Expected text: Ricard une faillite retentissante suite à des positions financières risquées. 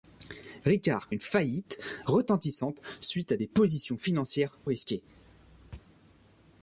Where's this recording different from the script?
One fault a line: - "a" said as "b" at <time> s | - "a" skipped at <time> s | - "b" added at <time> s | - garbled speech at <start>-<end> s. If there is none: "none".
none